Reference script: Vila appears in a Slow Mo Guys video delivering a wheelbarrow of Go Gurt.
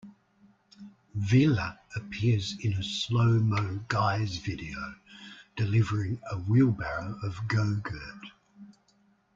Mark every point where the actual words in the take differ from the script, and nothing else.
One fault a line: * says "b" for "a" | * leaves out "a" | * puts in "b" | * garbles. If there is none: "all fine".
all fine